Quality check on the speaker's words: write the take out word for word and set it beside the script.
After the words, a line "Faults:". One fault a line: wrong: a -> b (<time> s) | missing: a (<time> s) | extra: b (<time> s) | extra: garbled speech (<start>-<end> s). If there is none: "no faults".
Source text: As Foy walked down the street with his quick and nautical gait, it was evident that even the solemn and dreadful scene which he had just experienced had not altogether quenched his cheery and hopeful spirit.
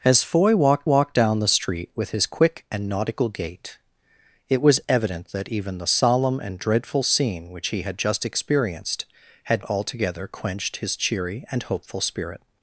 As Foy walked walked down the street with his quick and nautical gait, it was evident that even the solemn and dreadful scene which he had just experienced had altogether quenched his cheery and hopeful spirit.
Faults:
extra: walked (0.8 s)
missing: not (9.6 s)